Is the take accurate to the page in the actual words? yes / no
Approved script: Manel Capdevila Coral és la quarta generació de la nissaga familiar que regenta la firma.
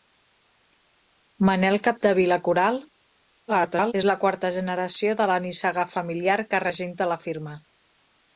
no